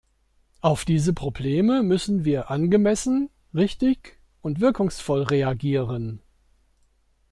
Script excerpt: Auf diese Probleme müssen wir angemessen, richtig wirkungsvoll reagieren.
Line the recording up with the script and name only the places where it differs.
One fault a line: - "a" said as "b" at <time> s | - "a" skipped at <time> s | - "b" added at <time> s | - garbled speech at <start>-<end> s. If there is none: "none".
- "und" added at 4.4 s